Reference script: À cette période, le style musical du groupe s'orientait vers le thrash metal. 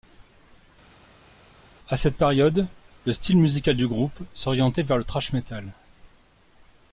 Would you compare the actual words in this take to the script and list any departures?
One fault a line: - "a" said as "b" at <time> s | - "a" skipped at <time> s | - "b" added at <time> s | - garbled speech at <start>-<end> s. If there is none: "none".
none